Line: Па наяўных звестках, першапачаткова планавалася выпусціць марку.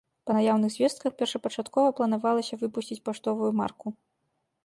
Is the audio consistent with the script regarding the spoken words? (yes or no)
no